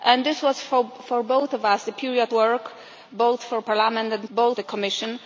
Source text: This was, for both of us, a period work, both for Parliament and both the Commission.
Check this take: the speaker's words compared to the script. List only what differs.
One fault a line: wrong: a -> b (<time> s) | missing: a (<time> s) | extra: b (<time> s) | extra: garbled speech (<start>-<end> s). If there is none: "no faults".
no faults